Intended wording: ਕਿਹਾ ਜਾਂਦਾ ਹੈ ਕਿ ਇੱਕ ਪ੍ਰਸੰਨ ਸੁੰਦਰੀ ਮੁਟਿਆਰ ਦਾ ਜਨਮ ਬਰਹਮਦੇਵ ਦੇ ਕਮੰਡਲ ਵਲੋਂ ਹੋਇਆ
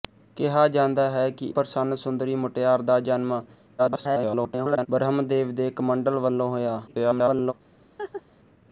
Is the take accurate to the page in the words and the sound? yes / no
no